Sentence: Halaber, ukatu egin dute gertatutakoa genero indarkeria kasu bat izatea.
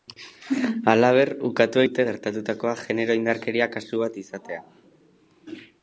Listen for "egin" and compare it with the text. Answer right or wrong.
wrong